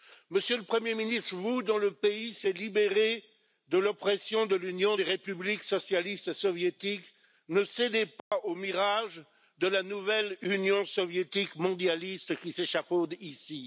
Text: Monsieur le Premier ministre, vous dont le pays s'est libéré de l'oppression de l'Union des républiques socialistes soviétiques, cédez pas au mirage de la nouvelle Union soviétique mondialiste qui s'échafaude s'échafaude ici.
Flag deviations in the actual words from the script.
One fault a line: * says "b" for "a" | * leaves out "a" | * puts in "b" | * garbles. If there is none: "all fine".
* puts in "ne"
* leaves out "s'échafaude"